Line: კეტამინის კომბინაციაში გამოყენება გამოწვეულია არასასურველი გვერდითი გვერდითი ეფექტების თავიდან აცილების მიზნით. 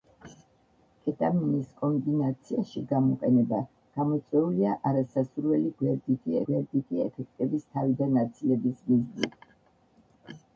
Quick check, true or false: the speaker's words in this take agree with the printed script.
true